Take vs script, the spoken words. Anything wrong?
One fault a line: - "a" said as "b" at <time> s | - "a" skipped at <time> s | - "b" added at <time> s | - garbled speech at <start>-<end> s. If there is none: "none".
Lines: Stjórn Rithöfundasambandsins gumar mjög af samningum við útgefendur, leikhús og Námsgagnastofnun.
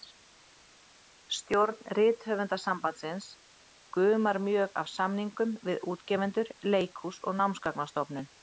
none